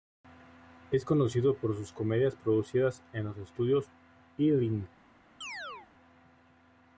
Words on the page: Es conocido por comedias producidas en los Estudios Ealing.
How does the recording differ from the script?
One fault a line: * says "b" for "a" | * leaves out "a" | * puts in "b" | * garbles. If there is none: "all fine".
* puts in "sus"